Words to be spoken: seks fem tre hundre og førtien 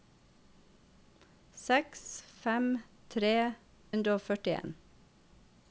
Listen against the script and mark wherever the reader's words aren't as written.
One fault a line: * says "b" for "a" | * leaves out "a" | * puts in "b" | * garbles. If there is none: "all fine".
all fine